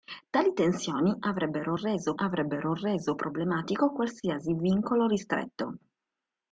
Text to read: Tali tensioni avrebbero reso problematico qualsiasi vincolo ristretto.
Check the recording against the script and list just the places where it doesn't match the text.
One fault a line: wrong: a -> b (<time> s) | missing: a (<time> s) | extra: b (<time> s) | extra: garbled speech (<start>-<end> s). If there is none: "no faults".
extra: avrebbero reso (2.1 s)